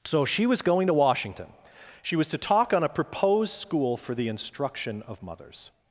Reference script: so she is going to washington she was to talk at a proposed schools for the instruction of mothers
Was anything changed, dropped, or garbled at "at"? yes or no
yes